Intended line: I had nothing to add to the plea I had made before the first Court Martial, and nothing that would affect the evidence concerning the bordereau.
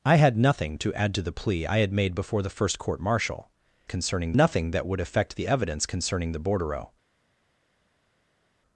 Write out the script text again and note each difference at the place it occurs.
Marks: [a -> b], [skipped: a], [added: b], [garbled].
I had nothing to add to the plea I had made before the first Court Martial, [and -> concerning] nothing that would affect the evidence concerning the bordereau.